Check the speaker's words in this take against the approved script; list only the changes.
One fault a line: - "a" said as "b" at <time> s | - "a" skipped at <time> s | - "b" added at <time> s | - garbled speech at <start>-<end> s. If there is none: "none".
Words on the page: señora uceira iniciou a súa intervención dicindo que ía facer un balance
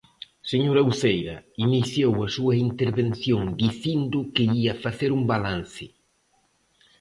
none